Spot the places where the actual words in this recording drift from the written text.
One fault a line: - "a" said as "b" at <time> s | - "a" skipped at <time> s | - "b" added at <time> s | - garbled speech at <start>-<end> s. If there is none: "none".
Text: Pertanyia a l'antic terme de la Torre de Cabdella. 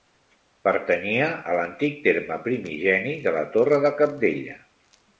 - "primigeni" added at 2.5 s